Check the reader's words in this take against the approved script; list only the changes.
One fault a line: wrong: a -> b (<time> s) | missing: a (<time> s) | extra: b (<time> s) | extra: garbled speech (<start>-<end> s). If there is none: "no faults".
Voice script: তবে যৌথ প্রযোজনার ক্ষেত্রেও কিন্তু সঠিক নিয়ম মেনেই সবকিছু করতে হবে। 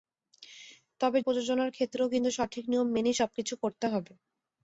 missing: যৌথ (1.2 s)